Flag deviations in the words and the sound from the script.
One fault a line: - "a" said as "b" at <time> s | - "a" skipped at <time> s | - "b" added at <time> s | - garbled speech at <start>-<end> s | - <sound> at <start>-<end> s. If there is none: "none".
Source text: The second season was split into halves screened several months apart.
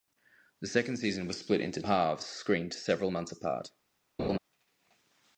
- laugh at 4.2-4.4 s